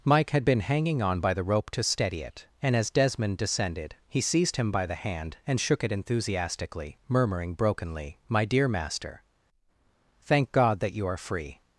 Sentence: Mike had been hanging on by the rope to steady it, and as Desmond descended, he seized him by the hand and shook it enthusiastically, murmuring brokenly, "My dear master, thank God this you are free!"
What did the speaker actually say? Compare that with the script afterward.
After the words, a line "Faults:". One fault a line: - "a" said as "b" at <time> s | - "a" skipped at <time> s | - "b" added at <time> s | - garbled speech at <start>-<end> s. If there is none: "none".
Mike had been hanging on by the rope to steady it, and as Desmond descended, he seized him by the hand and shook it enthusiastically, murmuring brokenly, "My dear master, thank God that you are free!"
Faults:
- "this" said as "that" at 10.8 s